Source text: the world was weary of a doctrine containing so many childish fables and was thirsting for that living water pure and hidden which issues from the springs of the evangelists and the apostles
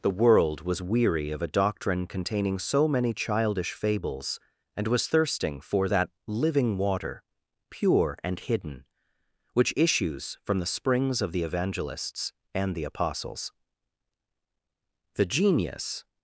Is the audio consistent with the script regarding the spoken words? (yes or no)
no